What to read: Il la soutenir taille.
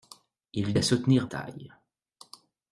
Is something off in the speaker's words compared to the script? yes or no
no